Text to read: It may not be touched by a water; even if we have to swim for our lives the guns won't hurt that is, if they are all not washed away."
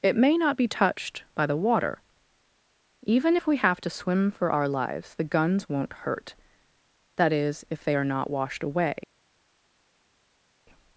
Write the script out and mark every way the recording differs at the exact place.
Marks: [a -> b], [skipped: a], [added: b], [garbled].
It may not be touched by [a -> the] water; even if we have to swim for our lives the guns won't hurt that is, if they are [skipped: all] not washed away."